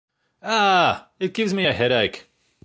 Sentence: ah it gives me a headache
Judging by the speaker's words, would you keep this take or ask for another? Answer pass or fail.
pass